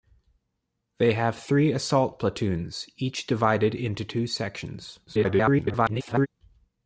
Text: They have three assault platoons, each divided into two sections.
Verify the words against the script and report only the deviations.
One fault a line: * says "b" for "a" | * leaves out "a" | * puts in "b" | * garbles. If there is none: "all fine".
* garbles